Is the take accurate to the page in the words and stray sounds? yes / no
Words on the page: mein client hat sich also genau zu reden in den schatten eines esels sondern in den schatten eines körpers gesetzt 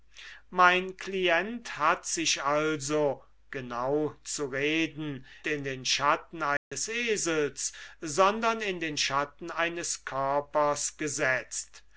no